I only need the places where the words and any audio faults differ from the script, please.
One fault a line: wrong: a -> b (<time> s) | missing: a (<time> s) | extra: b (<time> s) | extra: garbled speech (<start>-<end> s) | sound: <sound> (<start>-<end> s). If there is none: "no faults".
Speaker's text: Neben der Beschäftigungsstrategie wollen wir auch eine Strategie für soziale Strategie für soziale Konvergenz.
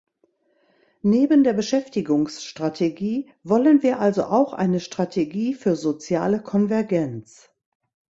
extra: also (4.0 s)
missing: Strategie für soziale (6.4 s)